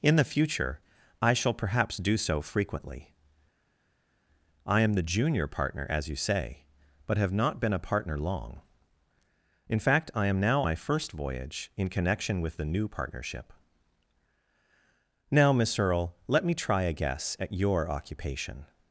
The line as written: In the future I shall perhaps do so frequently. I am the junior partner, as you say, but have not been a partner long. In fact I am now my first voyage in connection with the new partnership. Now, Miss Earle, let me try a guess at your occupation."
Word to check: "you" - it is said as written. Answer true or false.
true